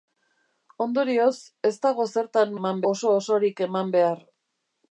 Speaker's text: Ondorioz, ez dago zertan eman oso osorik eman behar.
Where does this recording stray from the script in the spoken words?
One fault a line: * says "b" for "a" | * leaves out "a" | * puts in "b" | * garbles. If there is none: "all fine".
all fine